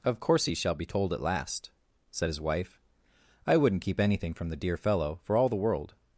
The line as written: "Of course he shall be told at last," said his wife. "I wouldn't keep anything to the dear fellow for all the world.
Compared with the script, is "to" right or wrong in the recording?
wrong